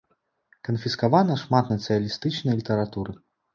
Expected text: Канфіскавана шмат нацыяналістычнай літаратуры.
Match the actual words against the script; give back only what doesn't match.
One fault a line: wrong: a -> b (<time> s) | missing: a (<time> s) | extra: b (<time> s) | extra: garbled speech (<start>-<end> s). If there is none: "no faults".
no faults